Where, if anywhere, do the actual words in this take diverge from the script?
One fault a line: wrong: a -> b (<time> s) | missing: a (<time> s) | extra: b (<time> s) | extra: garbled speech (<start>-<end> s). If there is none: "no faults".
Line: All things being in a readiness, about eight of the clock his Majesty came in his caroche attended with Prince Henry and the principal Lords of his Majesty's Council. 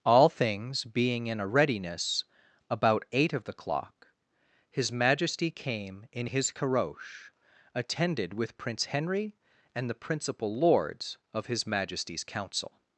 no faults